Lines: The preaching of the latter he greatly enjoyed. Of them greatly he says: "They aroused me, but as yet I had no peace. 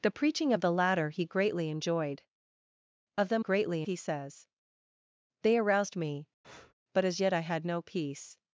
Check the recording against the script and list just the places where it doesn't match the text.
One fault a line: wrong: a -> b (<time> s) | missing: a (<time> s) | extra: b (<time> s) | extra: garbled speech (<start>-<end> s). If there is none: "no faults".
no faults